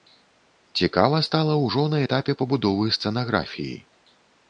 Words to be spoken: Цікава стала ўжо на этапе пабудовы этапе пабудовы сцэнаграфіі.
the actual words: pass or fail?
fail